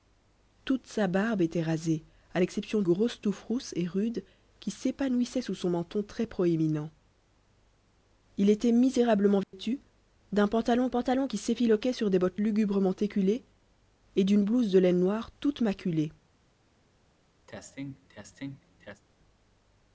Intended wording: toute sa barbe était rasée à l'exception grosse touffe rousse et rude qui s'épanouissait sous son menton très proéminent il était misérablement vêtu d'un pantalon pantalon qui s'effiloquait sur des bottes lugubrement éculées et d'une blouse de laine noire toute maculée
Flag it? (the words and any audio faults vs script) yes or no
yes